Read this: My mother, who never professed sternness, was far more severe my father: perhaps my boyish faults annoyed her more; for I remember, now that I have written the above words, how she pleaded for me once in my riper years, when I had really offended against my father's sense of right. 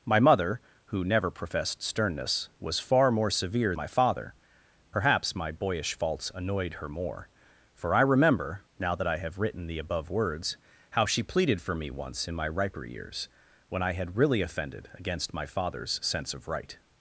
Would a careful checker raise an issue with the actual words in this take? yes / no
no